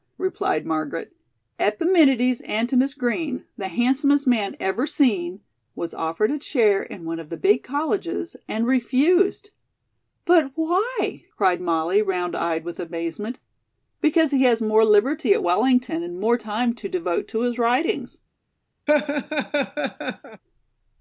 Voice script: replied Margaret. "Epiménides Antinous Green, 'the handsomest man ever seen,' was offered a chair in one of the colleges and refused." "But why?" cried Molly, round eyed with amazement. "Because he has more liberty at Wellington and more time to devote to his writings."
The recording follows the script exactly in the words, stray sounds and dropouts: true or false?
false